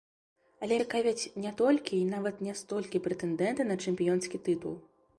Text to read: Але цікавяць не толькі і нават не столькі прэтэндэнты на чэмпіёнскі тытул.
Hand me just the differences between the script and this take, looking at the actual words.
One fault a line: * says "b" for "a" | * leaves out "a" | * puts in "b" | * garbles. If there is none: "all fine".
all fine